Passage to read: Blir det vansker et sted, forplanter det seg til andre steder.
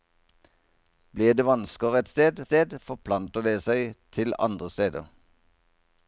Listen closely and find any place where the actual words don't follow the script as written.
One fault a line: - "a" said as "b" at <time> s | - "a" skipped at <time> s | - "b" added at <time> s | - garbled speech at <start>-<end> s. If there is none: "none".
- "sted" added at 2.4 s